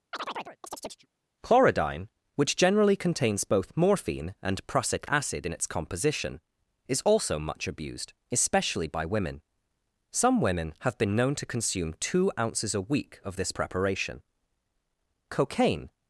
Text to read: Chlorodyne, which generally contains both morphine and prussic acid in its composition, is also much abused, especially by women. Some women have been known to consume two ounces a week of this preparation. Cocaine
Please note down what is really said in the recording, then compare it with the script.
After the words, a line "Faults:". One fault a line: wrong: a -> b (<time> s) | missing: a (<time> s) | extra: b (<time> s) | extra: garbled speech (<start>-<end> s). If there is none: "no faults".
Chlorodyne, which generally contains both morphine and prussic acid in its composition, is also much abused, especially by women. Some women have been known to consume two ounces a week of this preparation. Cocaine
Faults:
no faults